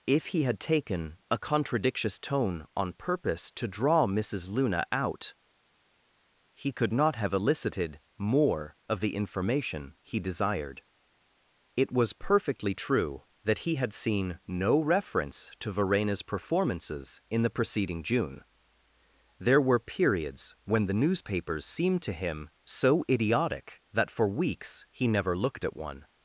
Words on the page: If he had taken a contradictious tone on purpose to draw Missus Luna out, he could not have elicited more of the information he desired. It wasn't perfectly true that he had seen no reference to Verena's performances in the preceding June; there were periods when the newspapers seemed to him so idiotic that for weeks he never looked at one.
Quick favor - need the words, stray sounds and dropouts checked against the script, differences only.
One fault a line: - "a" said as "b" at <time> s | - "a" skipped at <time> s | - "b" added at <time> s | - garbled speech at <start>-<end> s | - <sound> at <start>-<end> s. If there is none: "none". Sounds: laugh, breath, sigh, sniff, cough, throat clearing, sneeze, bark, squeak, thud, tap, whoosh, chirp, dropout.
- "wasn't" said as "was" at 11.9 s